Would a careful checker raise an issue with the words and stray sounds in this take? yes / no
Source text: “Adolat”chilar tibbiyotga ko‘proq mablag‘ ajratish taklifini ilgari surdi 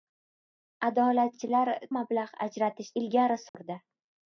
yes